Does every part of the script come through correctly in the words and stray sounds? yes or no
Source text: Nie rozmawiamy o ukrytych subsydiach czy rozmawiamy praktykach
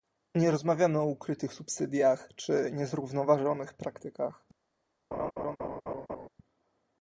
no